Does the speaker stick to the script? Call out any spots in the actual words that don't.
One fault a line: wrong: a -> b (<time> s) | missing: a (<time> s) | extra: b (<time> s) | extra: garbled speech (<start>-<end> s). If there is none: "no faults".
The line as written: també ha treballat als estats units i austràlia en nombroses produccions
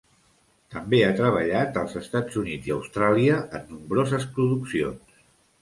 no faults